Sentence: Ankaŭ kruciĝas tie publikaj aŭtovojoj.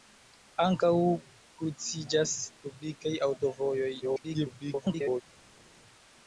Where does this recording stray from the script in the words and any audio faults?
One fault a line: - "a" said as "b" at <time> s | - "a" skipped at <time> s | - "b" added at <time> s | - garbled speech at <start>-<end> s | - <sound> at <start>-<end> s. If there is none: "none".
- "tie" skipped at 2.3 s
- garbled speech at 4.0-5.2 s